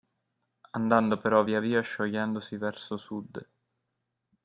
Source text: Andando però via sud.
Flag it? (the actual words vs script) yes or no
yes